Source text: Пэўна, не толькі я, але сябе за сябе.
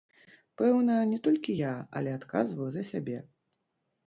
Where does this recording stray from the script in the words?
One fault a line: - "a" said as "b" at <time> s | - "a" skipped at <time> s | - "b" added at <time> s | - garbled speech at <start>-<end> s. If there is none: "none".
- "сябе" said as "адказваю" at 2.2 s